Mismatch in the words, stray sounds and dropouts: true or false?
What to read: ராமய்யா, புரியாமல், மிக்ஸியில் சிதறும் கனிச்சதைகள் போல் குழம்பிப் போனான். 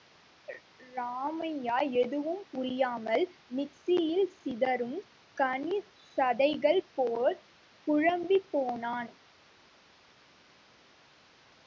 true